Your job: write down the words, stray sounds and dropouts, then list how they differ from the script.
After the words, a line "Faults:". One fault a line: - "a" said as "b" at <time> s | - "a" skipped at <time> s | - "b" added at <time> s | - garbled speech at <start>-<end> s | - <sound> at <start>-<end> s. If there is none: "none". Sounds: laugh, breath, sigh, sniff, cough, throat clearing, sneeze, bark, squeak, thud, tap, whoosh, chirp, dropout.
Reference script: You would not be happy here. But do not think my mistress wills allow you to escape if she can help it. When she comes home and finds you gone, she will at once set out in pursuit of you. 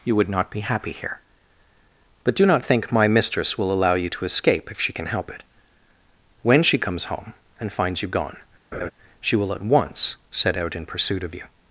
You would not be happy here. But do not think my mistress will allow you to escape if she can help it. When she comes home and finds you gone, she will at once set out in pursuit of you.
Faults:
- "wills" said as "will" at 3.6 s
- laugh at 8.7-8.9 s